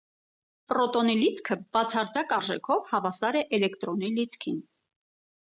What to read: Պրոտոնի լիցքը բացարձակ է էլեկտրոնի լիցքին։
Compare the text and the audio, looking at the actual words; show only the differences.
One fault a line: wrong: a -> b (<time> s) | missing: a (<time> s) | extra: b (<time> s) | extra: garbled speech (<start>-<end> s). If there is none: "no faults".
extra: արժեքով հավասար (2.4 s)